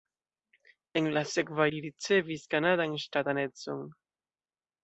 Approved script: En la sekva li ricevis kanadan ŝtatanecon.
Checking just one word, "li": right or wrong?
right